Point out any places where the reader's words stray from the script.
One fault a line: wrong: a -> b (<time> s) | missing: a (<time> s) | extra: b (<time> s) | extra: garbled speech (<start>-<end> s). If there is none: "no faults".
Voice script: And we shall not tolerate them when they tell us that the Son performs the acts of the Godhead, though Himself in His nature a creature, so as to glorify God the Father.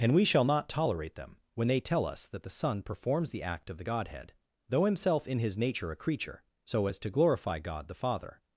wrong: acts -> act (3.4 s)